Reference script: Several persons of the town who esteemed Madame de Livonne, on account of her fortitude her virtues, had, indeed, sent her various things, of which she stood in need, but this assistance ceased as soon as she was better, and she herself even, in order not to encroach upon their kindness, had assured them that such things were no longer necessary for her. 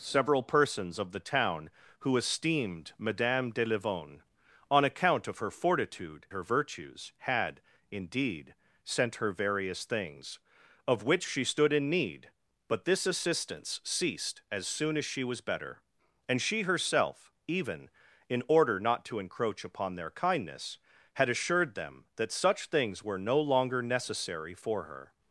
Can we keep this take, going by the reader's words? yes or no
yes